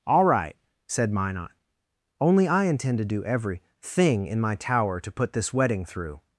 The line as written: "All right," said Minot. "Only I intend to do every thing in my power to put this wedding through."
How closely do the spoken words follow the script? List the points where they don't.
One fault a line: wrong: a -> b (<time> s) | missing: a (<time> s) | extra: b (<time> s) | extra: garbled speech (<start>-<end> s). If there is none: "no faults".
wrong: power -> tower (4.5 s)